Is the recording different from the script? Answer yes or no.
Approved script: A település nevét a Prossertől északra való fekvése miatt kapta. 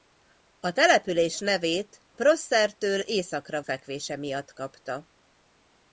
yes